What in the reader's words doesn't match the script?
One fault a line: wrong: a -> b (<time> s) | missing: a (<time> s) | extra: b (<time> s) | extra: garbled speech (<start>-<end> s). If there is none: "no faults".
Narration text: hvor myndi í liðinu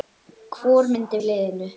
no faults